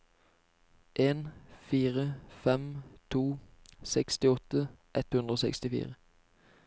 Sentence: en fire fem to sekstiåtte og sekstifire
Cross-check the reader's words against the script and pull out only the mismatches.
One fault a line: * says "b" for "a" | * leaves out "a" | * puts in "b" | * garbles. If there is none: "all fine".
* puts in "ett hundre"